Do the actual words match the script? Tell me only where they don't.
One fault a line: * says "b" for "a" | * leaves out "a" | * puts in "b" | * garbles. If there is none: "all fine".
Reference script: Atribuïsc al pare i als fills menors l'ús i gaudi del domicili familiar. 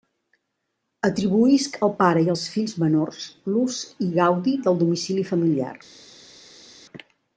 all fine